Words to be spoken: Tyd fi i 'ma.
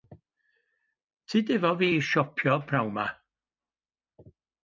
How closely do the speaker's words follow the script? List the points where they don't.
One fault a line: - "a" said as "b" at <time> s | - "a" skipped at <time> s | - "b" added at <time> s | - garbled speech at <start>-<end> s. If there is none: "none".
- "efo" added at 1.6 s
- "siopio p'nawn" added at 2.1 s